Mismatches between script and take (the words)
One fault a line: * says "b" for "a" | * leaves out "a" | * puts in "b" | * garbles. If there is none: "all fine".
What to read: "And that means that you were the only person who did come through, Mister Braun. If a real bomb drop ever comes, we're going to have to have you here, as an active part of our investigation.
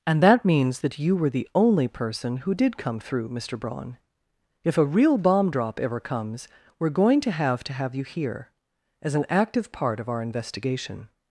all fine